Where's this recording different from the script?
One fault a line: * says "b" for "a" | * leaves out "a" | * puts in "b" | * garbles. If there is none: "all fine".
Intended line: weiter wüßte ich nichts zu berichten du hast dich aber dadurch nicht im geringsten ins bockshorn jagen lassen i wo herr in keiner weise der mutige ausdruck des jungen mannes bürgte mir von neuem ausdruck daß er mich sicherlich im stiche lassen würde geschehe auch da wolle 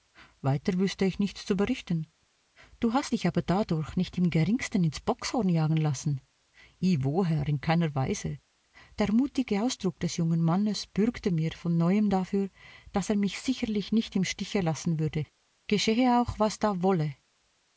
* says "dafür" for "ausdruck"
* puts in "nicht"
* puts in "was"